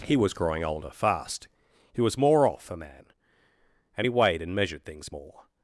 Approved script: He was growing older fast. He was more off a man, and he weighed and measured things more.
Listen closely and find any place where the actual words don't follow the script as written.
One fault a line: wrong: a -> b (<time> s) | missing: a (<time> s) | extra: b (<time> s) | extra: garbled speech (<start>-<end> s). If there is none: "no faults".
no faults